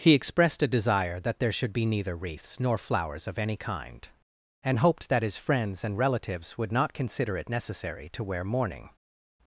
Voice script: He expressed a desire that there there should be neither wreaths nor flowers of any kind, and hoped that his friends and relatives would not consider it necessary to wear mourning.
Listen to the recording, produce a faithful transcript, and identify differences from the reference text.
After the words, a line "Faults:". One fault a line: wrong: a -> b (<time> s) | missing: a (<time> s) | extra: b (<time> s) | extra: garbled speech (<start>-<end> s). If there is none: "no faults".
He expressed a desire that there should be neither wreaths nor flowers of any kind, and hoped that his friends and relatives would not consider it necessary to wear mourning.
Faults:
missing: there (1.5 s)